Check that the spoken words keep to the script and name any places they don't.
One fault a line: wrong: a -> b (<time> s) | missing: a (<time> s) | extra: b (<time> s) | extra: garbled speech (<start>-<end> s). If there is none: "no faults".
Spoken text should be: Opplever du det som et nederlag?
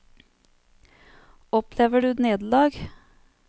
missing: det som et (2.1 s)